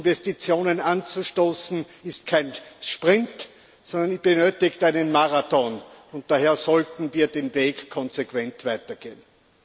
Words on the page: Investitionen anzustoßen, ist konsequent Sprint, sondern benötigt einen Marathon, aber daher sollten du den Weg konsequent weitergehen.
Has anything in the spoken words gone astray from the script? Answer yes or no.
yes